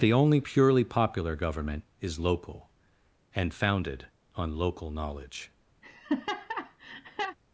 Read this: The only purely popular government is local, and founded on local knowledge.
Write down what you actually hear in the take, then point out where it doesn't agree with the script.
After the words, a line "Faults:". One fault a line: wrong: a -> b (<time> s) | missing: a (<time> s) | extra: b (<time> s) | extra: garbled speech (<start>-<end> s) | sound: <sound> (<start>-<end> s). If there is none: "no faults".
The only purely popular government is local, and founded on local knowledge.
Faults:
sound: laugh (5.8-7.4 s)